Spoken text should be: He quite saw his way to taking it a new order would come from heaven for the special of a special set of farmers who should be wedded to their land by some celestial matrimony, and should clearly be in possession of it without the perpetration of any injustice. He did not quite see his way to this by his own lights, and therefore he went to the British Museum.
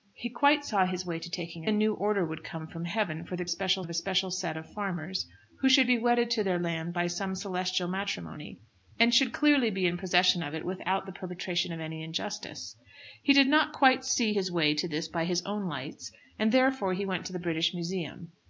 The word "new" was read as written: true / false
true